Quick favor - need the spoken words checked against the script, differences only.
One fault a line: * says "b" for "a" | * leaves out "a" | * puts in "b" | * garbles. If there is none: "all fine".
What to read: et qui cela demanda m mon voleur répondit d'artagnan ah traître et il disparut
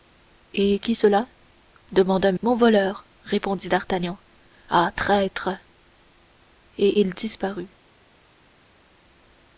all fine